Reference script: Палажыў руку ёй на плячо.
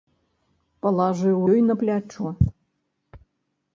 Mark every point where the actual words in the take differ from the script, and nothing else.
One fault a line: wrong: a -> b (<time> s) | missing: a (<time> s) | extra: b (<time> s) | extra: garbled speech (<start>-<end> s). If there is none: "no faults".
missing: руку (1.4 s)